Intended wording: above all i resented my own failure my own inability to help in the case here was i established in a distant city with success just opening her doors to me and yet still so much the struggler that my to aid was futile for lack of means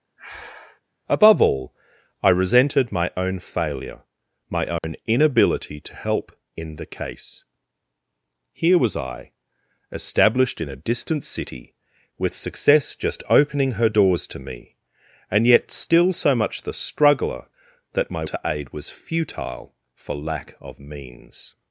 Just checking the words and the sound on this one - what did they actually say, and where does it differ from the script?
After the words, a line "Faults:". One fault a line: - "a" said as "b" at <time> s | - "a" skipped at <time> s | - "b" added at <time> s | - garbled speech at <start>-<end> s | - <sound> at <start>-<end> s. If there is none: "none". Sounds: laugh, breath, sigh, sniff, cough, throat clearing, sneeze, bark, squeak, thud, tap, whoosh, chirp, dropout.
above all i resented my own failure my own inability to help in the case here was i established in a distant city with success just opening her doors to me and yet still so much the struggler that my to aid was futile for lack of means
Faults:
- breath at 0.2-0.8 s
- dropout at 4.8-4.8 s